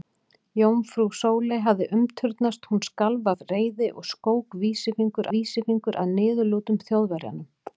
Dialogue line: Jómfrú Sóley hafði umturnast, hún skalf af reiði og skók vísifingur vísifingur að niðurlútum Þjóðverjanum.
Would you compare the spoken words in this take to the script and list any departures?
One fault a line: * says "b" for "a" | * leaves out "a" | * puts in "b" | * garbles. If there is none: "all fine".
all fine